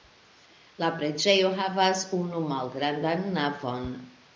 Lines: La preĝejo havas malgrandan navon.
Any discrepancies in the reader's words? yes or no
yes